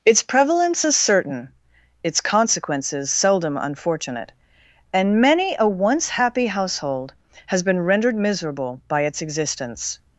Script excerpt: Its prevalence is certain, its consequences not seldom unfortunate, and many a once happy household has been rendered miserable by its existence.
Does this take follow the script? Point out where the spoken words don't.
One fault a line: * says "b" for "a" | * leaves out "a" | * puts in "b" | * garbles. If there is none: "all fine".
* leaves out "not"